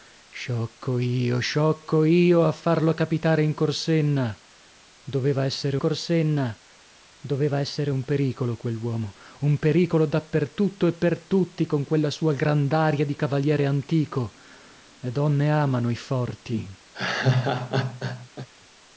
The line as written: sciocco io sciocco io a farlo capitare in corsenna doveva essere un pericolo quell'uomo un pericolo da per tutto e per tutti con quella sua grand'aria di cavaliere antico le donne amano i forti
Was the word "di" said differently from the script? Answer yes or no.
no